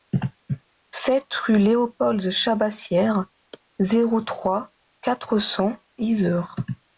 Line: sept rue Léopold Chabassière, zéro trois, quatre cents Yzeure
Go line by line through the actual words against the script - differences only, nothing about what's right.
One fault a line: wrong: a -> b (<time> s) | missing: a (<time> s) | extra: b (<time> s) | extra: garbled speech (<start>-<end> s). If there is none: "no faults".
no faults